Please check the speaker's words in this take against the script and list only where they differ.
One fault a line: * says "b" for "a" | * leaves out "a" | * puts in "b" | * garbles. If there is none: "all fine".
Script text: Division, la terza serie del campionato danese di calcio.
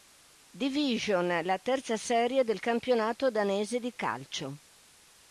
all fine